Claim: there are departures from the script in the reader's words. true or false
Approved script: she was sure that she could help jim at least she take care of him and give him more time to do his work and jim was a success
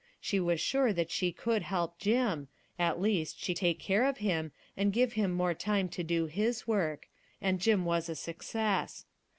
false